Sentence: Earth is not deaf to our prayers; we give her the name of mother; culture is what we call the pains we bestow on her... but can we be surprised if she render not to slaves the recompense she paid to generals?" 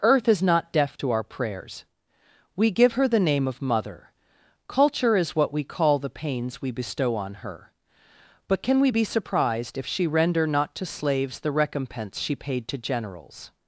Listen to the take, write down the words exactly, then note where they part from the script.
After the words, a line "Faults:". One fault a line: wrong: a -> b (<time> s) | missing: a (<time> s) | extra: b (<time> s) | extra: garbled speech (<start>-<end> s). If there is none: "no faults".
Earth is not deaf to our prayers; we give her the name of mother; culture is what we call the pains we bestow on her... but can we be surprised if she render not to slaves the recompense she paid to generals?"
Faults:
no faults